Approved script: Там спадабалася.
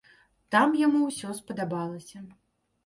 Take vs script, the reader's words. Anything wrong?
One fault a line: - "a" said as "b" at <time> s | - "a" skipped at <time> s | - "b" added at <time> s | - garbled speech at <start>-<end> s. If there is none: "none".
- "яму ўсё" added at 0.8 s